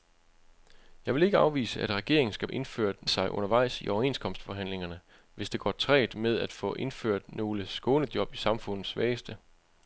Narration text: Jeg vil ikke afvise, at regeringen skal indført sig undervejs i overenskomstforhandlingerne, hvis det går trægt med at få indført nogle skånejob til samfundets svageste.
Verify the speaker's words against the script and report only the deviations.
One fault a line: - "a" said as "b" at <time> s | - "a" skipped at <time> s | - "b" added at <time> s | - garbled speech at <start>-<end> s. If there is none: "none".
none